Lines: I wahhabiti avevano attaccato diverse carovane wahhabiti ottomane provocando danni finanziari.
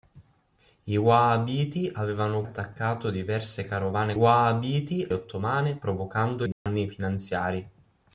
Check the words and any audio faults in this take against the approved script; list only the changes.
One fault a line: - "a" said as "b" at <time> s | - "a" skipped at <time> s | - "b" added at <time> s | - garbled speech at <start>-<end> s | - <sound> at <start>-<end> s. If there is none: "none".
- dropout at 6.5-6.7 s